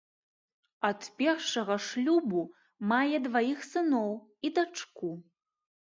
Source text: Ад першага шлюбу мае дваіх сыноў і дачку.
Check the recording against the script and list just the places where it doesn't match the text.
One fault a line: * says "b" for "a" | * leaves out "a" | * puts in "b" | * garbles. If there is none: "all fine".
all fine